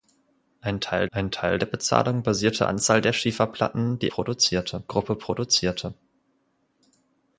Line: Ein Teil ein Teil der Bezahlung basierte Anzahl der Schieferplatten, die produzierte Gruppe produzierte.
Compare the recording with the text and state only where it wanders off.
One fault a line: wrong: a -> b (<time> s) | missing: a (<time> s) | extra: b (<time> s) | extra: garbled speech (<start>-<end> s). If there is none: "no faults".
no faults